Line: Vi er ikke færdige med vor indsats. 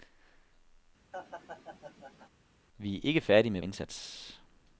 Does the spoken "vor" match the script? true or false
false